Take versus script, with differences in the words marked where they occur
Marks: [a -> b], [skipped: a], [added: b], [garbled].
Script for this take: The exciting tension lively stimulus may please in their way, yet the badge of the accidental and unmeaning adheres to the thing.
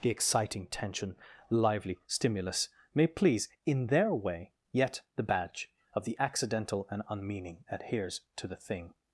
The exciting tension lively stimulus may please in their way, yet the badge of the accidental and unmeaning adheres to the thing.